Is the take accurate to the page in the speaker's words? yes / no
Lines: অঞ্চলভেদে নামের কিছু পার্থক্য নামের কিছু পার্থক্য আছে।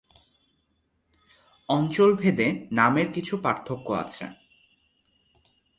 no